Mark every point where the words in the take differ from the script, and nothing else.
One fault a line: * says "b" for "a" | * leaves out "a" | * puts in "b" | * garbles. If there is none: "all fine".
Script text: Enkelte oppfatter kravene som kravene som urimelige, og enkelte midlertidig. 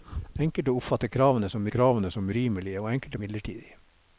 all fine